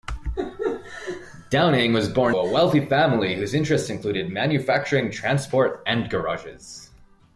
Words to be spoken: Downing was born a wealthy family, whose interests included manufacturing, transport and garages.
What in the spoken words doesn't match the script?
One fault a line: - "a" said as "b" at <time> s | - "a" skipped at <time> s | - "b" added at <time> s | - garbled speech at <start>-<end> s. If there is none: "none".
none